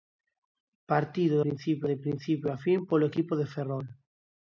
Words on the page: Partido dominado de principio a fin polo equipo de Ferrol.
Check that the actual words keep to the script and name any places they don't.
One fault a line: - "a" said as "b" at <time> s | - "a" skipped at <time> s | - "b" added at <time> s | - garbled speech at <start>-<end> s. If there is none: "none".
- "dominado" said as "principio" at 1.4 s